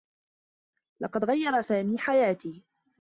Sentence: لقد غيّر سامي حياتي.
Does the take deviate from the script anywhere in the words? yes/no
no